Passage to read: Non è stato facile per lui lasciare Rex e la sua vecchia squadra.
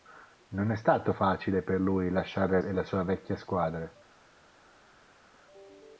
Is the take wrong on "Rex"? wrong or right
wrong